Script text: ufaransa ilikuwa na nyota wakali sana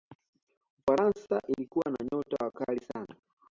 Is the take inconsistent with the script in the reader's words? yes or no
no